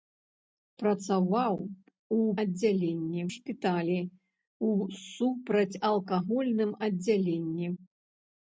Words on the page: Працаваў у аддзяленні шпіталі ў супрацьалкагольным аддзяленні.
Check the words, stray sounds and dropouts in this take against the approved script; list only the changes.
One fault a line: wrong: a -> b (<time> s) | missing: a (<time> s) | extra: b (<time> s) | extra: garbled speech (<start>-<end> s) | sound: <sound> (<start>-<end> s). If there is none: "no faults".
no faults